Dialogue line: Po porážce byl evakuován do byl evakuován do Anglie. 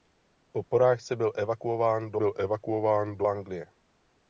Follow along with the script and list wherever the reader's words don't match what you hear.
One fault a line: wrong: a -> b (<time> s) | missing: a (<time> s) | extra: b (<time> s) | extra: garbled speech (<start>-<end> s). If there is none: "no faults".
no faults